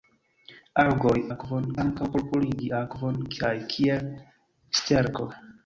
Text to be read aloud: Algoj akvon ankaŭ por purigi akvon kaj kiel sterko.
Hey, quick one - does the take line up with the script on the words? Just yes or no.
yes